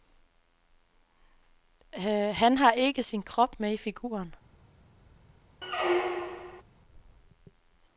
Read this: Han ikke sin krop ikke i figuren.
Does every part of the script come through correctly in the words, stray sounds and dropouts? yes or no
no